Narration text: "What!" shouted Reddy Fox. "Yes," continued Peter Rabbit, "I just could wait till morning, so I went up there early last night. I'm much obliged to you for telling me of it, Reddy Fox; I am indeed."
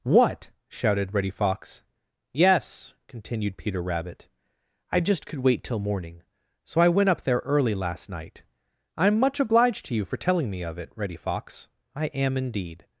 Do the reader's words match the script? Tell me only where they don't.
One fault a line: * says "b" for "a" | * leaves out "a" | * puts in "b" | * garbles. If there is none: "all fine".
all fine